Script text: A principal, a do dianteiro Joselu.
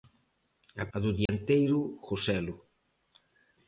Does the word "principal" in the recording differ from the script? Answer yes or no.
yes